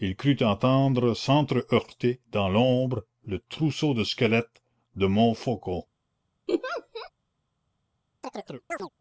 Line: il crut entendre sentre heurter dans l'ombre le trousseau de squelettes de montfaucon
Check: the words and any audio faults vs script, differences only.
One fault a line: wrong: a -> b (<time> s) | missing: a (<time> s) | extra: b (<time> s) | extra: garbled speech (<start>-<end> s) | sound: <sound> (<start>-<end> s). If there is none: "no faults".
sound: laugh (6.5-7.1 s)
sound: chirp (8.2-8.9 s)